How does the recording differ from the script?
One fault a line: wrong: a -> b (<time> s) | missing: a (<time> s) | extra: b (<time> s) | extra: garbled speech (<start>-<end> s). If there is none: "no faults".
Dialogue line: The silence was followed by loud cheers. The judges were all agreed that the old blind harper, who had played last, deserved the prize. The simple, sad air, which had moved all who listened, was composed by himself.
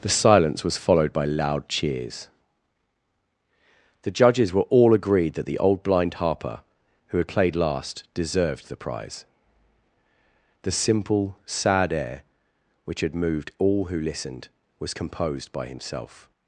no faults